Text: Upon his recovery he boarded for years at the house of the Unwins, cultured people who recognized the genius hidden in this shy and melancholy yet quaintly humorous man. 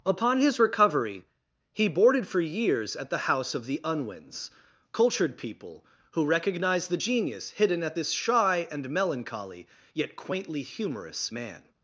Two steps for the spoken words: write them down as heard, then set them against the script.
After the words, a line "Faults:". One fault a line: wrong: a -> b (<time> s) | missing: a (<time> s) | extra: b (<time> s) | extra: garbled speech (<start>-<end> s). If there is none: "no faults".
Upon his recovery he boarded for years at the house of the Unwins, cultured people who recognized the genius hidden at this shy and melancholy yet quaintly humorous man.
Faults:
wrong: in -> at (7.8 s)